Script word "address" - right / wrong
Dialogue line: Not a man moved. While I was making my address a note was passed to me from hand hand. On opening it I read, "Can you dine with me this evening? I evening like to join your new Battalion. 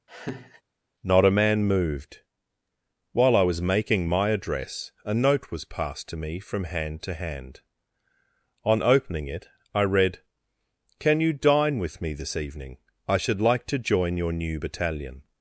right